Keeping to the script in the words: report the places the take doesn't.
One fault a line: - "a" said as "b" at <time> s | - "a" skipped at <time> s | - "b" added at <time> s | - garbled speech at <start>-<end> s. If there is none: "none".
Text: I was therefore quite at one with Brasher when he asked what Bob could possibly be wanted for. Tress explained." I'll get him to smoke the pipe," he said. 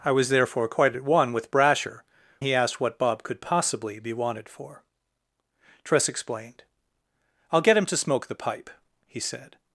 - "when" skipped at 2.0 s